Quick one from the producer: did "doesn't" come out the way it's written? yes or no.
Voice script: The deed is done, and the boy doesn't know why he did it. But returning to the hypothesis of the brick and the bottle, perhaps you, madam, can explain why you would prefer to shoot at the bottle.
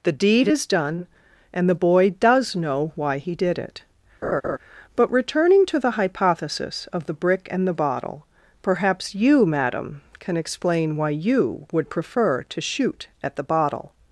no